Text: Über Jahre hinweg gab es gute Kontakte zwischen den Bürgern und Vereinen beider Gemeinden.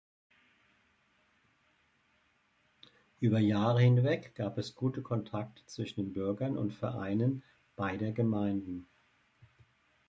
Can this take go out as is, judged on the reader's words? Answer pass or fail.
pass